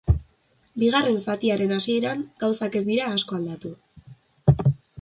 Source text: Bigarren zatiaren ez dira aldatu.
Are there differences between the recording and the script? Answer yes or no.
yes